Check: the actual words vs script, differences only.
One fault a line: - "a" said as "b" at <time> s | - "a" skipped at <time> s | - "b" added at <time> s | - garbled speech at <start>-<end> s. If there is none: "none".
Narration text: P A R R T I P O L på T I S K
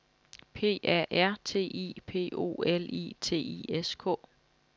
- "R" skipped at 1.4 s
- "på" said as "I" at 2.8 s